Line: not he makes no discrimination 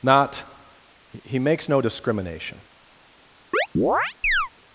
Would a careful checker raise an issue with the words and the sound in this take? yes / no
yes